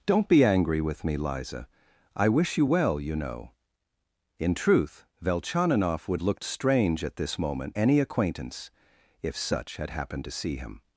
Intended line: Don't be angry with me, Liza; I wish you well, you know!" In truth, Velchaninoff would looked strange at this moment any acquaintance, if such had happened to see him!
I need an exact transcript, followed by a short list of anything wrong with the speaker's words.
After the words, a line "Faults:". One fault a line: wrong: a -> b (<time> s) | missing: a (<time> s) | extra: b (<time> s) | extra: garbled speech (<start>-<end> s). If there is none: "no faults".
Don't be angry with me, Liza; I wish you well, you know!" In truth, Velchaninoff would looked strange at this moment any acquaintance, if such had happened to see him!
Faults:
no faults